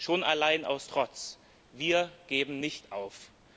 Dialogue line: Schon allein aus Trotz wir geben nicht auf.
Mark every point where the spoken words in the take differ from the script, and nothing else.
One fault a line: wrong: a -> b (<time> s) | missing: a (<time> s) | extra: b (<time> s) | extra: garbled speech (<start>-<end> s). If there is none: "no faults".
no faults